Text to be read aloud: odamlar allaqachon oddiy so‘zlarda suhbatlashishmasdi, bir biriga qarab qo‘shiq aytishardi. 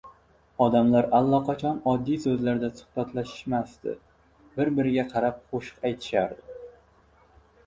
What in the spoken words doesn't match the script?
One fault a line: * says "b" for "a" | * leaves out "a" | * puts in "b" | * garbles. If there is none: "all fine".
all fine